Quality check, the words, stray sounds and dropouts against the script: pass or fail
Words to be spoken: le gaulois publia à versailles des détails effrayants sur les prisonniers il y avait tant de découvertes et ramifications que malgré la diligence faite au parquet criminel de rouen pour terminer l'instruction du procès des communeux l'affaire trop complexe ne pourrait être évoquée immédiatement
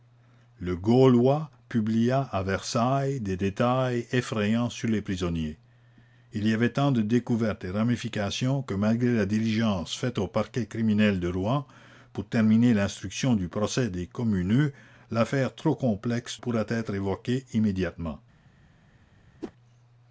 fail